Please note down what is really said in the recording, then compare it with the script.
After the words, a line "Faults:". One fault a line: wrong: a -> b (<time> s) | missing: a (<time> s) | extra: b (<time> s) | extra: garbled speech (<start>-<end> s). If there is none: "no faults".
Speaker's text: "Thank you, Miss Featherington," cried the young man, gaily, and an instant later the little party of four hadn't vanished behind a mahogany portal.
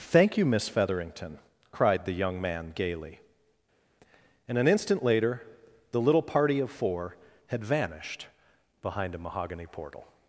"Thank you, Miss Featherington," cried the young man, gaily, and an instant later the little party of four had vanished behind a mahogany portal.
Faults:
wrong: hadn't -> had (7.5 s)